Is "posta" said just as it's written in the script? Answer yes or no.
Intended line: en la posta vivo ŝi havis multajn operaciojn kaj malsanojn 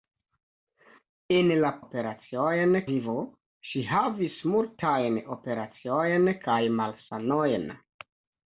no